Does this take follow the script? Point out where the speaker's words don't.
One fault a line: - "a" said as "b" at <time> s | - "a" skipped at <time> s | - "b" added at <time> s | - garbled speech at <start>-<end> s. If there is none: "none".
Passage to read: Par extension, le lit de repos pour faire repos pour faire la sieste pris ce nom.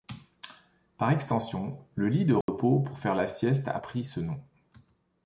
- "repos pour faire" skipped at 3.1 s
- "a" added at 3.7 s